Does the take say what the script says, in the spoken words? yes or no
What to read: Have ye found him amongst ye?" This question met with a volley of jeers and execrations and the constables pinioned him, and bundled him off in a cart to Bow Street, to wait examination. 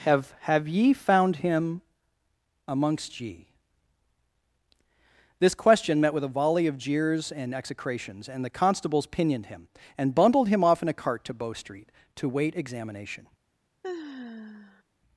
no